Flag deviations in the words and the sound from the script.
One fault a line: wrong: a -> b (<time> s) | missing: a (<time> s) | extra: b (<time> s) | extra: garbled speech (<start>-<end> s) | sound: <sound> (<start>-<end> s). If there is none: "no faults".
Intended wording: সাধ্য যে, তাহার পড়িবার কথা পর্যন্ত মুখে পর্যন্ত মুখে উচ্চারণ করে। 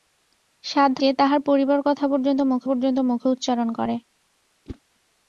sound: whoosh (4.7-4.8 s)